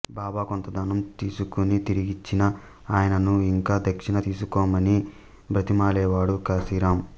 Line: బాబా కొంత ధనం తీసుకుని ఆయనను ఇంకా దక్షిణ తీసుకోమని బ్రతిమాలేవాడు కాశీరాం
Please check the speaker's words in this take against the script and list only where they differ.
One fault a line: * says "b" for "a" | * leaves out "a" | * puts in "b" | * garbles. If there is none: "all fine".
* puts in "తిరిగిచ్చినా"